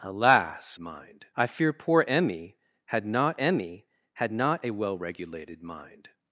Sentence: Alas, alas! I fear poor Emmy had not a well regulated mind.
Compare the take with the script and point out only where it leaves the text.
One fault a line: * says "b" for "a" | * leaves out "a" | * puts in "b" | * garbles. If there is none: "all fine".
* says "mind" for "alas"
* puts in "Emmy had not"